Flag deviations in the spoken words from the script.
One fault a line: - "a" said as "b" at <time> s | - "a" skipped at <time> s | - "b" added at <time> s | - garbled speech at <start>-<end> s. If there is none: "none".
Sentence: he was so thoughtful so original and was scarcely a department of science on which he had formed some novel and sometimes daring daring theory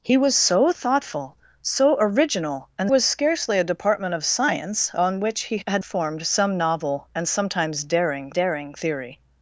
none